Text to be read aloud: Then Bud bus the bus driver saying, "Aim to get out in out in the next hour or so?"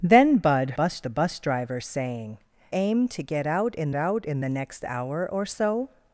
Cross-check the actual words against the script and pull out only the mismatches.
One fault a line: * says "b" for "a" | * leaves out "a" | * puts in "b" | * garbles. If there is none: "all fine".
all fine